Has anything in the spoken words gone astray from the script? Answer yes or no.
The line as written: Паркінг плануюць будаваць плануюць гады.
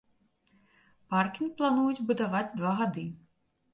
yes